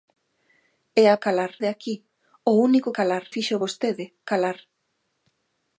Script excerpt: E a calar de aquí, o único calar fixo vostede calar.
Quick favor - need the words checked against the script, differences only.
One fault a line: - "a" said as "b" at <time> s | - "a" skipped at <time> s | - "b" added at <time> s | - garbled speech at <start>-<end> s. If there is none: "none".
none